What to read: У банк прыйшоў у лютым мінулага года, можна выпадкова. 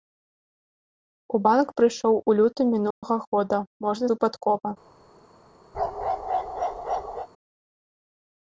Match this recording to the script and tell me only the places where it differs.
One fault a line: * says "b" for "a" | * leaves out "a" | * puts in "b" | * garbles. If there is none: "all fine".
all fine